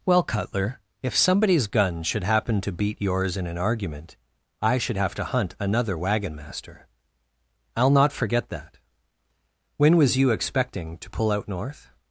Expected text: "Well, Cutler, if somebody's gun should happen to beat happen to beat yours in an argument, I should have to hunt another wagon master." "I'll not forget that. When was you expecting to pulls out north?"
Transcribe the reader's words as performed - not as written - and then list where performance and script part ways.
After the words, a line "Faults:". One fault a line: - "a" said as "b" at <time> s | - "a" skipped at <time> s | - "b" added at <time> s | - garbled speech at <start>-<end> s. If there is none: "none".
"Well, Cutler, if somebody's gun should happen to beat yours in an argument, I should have to hunt another wagon master." "I'll not forget that. When was you expecting to pull out north?"
Faults:
- "happen to beat" skipped at 3.0 s
- "pulls" said as "pull" at 11.1 s